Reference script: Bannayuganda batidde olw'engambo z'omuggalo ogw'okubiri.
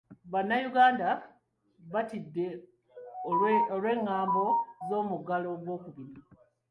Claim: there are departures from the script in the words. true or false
false